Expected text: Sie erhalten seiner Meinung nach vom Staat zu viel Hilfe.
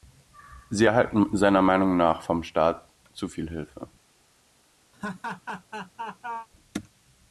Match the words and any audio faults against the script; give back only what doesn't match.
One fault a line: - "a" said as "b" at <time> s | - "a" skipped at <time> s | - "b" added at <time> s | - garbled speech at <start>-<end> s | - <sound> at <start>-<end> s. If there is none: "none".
- laugh at 4.9-6.5 s